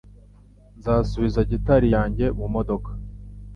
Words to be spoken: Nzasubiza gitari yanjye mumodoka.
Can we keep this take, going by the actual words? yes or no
yes